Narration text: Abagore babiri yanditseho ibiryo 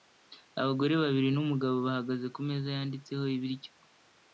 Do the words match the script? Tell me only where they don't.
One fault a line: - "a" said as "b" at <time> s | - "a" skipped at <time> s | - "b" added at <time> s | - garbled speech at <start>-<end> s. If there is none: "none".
- "n'umugabo bahagaze kumeza" added at 1.3 s